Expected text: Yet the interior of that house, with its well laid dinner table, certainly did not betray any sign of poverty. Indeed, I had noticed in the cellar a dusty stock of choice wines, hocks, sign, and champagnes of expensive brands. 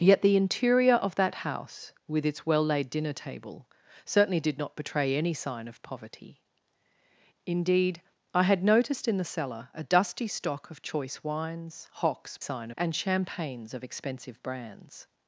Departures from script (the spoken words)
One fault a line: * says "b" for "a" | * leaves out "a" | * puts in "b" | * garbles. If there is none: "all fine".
all fine